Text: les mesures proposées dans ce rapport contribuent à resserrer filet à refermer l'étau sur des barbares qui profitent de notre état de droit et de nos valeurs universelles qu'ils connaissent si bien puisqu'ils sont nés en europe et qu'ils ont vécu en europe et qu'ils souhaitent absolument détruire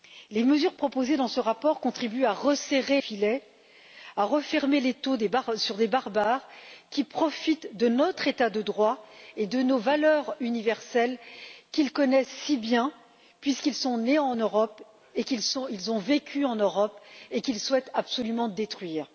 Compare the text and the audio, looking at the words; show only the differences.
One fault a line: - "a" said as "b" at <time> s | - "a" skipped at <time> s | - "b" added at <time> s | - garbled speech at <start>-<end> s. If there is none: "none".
none